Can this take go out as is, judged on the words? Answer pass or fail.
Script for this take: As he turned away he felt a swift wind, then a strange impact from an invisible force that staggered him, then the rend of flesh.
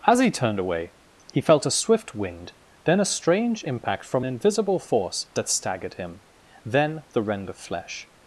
fail